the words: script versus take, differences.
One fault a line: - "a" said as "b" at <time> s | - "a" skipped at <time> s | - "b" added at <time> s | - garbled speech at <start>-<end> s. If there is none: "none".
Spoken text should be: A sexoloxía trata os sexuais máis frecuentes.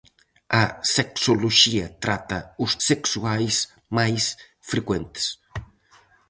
none